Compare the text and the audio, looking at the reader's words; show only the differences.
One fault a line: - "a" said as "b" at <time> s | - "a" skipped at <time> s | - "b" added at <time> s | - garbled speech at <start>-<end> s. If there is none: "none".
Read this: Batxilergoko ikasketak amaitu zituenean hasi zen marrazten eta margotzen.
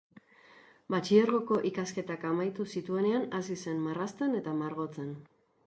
none